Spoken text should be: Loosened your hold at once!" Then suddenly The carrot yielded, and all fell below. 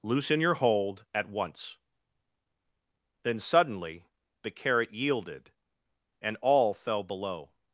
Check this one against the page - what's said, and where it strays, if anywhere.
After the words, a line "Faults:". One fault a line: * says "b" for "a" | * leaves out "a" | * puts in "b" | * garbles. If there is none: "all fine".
Loosen your hold at once!" Then suddenly The carrot yielded, and all fell below.
Faults:
* says "Loosen" for "Loosened"